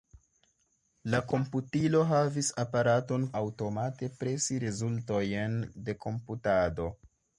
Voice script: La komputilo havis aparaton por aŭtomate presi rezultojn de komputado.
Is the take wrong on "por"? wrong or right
wrong